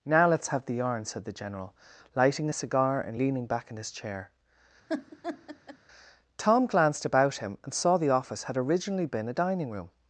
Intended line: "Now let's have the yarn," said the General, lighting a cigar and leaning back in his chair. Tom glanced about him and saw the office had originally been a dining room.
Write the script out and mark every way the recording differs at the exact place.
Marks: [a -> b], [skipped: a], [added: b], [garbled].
"Now let's have the yarn," said the General, lighting a cigar and leaning back in his chair. Tom glanced about him and saw the office had originally been a dining room.